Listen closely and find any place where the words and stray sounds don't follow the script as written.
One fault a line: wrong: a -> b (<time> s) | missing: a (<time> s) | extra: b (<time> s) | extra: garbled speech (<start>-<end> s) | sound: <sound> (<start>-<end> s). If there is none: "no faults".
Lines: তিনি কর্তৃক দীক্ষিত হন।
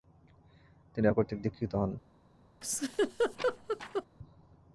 sound: laugh (2.6-4.0 s)